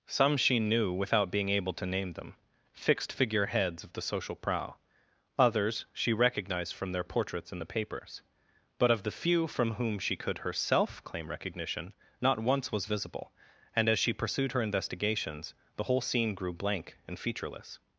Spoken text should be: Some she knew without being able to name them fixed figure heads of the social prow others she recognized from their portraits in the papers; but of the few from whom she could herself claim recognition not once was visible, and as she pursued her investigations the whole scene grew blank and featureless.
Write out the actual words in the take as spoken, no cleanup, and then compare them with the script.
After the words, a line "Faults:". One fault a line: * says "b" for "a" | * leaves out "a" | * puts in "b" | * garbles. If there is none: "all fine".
Some she knew without being able to name them fixed figure heads of the social prow others she recognized from their portraits in the papers; but of the few from whom she could herself claim recognition not once was visible, and as she pursued her investigations the whole scene grew blank and featureless.
Faults:
all fine